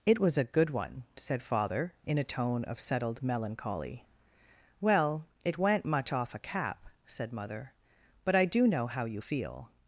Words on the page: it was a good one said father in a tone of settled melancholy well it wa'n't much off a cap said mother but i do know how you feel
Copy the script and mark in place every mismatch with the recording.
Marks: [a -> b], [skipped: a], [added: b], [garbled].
it was a good one said father in a tone of settled melancholy well it wa'n't much off a cap said mother but i do know how you feel